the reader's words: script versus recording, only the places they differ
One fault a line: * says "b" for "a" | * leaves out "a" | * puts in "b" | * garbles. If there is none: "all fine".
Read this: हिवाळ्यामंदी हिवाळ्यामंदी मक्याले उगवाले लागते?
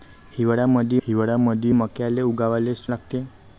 all fine